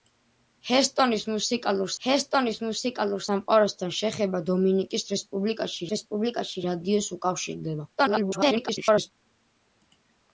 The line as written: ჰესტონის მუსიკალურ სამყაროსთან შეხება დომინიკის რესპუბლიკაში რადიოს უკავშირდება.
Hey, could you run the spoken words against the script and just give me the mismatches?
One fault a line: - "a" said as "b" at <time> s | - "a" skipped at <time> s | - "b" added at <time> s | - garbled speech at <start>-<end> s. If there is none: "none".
- "ჰესტონის მუსიკალურ" added at 2.1 s
- "რესპუბლიკაში" added at 5.9 s
- garbled speech at 8.0-9.1 s